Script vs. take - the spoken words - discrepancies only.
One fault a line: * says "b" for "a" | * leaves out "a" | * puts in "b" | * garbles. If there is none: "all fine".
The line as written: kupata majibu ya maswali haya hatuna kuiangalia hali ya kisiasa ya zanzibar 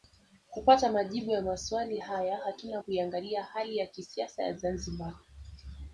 all fine